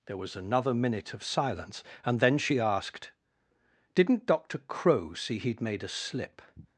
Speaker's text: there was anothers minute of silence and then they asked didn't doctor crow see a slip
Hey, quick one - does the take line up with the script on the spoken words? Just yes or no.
no